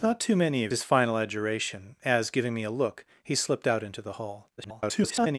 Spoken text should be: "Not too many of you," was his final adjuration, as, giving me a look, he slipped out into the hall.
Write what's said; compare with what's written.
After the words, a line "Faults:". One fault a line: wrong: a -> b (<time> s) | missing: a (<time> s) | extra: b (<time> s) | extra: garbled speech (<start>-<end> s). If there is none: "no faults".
"Not too many of his final adjuration, as, giving me a look, he slipped out into the hall. [garbled]
Faults:
missing: you was (0.7 s)
extra: garbled speech (4.6-5.4 s)